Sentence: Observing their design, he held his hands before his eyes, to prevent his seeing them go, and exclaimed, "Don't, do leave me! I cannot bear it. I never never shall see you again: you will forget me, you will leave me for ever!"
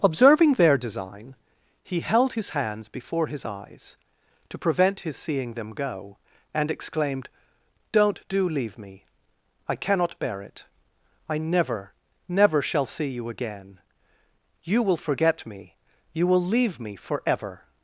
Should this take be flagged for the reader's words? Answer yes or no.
no